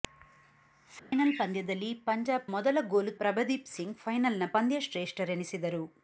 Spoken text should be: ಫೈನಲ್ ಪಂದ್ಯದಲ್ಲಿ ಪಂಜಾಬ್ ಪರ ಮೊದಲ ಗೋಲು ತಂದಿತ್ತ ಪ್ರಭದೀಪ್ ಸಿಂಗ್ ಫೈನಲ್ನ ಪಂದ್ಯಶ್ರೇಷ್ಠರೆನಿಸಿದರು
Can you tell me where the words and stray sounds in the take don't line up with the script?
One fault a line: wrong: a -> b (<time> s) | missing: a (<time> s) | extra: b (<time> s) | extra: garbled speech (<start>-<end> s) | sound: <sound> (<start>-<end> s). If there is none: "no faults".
sound: dropout (1.0-1.1 s)
missing: ಪರ (2.5 s)
missing: ತಂದಿತ್ತ (3.1 s)